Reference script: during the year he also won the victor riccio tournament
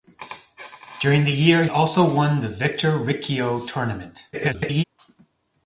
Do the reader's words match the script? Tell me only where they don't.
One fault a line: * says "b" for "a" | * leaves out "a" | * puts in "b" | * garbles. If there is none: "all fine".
* leaves out "he"
* garbles